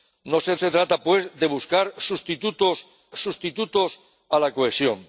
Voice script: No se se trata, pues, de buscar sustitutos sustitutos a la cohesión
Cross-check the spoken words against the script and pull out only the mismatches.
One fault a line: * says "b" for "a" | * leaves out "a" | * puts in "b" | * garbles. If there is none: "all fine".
all fine